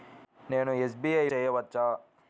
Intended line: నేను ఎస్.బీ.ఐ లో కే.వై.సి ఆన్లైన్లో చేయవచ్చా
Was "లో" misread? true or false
true